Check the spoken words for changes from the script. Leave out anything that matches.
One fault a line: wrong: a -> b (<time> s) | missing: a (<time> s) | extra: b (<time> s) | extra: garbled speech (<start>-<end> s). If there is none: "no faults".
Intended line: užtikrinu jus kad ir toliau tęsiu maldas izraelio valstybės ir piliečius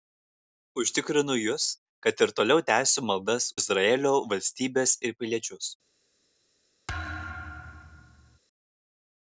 no faults